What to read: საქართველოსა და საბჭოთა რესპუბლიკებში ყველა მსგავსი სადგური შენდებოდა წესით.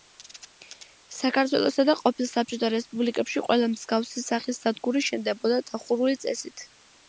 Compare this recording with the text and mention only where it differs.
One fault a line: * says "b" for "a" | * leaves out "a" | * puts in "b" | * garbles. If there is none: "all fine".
* puts in "ყოფილ"
* puts in "სახის"
* puts in "დახურული"